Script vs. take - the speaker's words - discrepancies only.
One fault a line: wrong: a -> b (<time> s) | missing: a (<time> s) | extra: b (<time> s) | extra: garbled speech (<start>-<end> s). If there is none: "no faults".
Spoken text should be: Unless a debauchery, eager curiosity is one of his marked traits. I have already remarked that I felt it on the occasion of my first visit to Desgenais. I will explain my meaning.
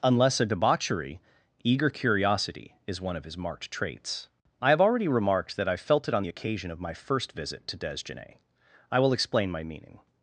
no faults